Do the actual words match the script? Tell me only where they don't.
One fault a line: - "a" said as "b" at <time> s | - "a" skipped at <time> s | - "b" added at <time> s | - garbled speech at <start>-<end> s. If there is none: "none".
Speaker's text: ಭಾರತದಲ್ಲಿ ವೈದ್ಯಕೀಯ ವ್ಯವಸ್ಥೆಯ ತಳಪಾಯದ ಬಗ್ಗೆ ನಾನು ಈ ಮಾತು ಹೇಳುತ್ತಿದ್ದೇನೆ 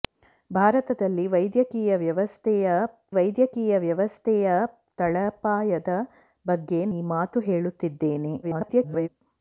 - "ವೈದ್ಯಕೀಯ ವ್ಯವಸ್ಥೆಯ" added at 3.1 s
- "ನಾನು" skipped at 6.8 s
- garbled speech at 8.4-9.1 s